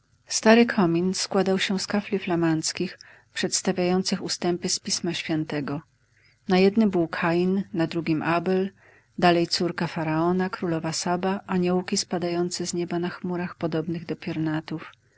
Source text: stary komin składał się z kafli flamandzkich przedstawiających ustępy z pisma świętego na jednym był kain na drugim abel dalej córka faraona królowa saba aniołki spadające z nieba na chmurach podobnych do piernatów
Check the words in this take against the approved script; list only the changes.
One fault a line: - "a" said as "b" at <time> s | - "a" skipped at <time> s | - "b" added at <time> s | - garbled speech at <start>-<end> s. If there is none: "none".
none